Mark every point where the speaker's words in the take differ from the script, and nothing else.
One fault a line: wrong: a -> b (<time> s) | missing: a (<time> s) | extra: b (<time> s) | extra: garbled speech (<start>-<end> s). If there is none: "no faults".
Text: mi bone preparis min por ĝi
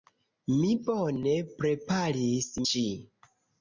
missing: min por (2.5 s)